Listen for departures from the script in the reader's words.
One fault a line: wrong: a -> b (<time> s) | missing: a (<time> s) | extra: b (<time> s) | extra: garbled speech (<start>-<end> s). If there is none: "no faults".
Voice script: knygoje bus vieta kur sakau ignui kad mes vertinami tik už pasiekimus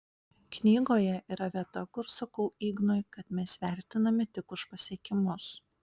wrong: bus -> yra (1.4 s)